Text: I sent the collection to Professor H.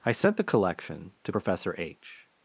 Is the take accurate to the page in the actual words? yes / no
yes